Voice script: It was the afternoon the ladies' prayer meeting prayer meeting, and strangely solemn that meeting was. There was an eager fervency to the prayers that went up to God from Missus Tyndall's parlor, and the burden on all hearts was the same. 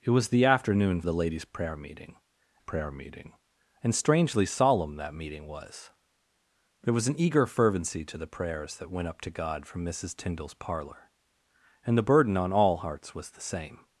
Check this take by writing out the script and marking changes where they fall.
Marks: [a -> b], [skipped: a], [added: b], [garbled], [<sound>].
It was the afternoon the ladies' prayer meeting prayer meeting, and strangely solemn that meeting was. There was an eager fervency to the prayers that went up to God from Missus Tyndall's parlor, and the burden on all hearts was the same.